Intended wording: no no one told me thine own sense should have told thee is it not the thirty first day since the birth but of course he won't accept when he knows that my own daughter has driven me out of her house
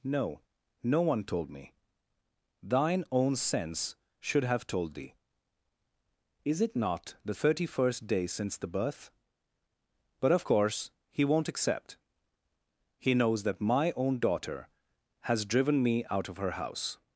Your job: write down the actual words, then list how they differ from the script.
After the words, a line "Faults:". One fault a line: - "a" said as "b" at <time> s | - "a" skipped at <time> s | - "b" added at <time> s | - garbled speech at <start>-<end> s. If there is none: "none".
no no one told me thine own sense should have told thee is it not the thirty first day since the birth but of course he won't accept he knows that my own daughter has driven me out of her house
Faults:
- "when" skipped at 12.0 s